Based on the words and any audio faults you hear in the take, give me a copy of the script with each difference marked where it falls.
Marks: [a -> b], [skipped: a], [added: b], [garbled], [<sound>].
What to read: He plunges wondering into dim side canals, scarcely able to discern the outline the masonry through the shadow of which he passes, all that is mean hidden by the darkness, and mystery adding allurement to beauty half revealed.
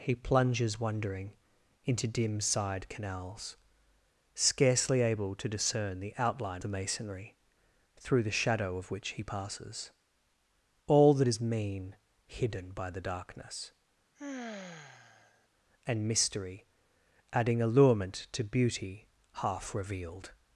He plunges wondering into dim side canals, scarcely able to discern the outline the masonry through the shadow of which he passes, all that is mean hidden by the darkness, [sigh] and mystery adding allurement to beauty half revealed.